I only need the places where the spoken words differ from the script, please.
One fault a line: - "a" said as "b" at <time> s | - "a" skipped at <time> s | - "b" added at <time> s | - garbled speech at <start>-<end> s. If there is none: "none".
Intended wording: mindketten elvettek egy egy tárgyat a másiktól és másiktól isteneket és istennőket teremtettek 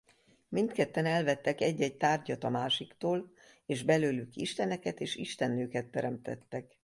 - "másiktól" said as "belőlük" at 3.8 s